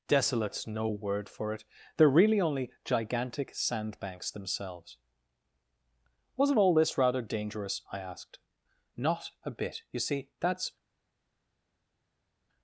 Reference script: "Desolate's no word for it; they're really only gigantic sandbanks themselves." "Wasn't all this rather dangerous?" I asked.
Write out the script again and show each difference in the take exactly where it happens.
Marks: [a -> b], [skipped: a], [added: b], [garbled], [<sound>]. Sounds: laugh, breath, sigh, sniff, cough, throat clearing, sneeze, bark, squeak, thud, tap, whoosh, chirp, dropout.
"Desolate's no word for it; they're really only gigantic sandbanks themselves." "Wasn't all this rather dangerous?" I asked. [added: Not a bit you see that's]